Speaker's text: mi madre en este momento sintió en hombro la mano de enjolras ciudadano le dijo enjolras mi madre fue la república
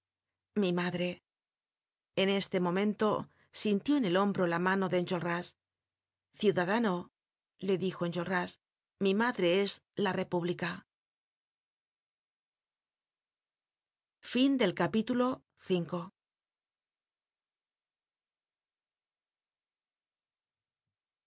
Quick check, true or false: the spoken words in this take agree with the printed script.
false